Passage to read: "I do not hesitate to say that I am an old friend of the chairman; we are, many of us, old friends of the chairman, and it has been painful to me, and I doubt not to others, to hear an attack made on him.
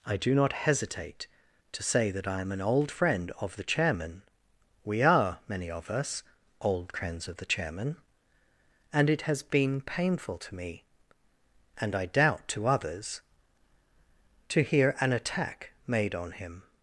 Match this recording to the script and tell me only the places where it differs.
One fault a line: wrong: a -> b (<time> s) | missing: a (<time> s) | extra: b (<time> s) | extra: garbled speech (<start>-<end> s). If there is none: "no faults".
missing: not (12.5 s)